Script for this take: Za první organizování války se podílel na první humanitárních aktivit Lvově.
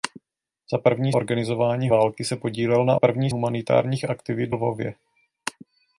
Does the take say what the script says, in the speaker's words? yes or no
yes